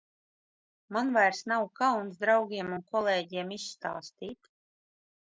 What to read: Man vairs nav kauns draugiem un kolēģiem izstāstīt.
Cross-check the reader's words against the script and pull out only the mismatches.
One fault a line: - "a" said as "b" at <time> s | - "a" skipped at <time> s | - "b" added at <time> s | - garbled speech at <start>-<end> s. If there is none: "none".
none